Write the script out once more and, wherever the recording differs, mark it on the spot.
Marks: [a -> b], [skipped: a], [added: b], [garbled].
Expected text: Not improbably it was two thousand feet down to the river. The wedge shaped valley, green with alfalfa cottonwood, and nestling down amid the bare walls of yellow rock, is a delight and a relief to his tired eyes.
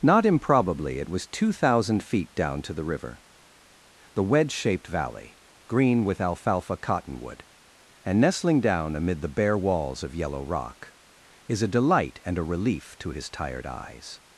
Not improbably it was two thousand feet down to the river. The wedge shaped valley, green with alfalfa cottonwood, and nestling down amid the bare walls of yellow rock, is a delight and a relief to his tired eyes.